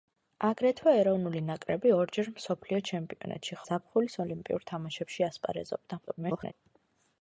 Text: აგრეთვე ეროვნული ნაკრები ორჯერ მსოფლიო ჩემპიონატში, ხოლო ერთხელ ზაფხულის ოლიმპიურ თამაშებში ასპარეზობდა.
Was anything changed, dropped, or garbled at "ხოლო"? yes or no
yes